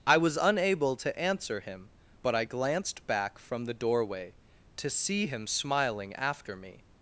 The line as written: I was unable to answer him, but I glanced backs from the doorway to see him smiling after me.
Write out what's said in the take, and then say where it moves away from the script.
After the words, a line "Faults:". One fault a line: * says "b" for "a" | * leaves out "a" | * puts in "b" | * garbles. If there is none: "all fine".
I was unable to answer him, but I glanced back from the doorway to see him smiling after me.
Faults:
* says "back" for "backs"